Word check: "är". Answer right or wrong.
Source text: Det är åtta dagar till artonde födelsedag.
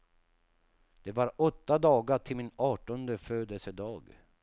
wrong